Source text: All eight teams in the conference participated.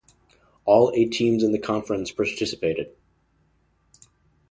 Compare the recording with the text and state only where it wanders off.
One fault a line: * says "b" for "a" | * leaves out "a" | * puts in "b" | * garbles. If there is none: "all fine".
all fine